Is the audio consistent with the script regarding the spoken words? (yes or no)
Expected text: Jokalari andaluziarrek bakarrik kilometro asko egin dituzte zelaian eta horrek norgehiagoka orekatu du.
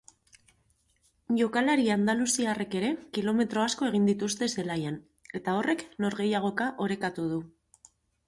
no